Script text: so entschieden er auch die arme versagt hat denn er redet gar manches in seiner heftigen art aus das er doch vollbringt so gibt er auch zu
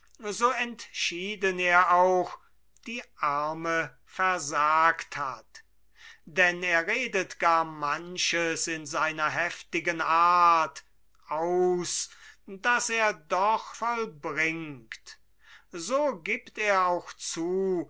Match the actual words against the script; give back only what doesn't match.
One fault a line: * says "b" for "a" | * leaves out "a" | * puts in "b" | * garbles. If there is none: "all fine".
all fine